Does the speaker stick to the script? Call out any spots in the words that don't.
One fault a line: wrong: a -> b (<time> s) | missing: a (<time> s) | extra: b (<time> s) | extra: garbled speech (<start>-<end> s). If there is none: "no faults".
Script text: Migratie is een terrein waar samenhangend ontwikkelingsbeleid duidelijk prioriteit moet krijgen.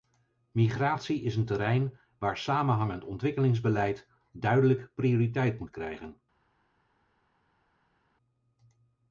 no faults